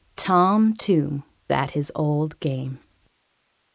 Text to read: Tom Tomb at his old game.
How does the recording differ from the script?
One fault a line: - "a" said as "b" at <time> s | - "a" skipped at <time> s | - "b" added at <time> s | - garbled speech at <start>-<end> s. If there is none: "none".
none